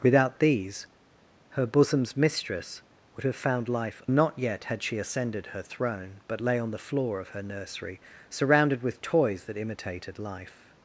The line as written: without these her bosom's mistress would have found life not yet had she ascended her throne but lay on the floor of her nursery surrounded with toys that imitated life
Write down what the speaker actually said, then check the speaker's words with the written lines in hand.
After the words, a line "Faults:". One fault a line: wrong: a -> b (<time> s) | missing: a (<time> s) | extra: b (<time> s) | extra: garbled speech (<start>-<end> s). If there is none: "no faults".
without these her bosom's mistress would have found life not yet had she ascended her throne but lay on the floor of her nursery surrounded with toys that imitated life
Faults:
no faults